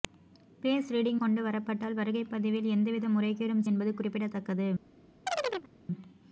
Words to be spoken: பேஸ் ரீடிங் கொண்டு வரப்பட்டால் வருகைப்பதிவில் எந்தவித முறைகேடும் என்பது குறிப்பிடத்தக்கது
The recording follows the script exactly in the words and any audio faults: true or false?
false